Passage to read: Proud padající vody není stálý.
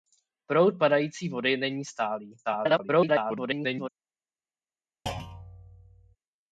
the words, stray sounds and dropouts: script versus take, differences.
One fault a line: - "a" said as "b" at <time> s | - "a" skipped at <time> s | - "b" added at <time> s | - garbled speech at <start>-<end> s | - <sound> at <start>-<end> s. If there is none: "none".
- garbled speech at 2.4-3.9 s
- thud at 5.1-6.2 s